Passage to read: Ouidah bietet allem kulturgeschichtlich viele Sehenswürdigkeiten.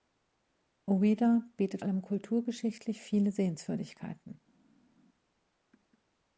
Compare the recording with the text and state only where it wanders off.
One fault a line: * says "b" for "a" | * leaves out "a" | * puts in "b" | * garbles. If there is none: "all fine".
all fine